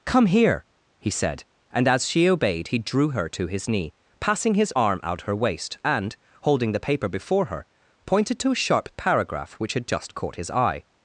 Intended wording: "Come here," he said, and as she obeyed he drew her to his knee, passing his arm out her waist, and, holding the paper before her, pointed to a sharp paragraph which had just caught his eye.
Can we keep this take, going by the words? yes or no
yes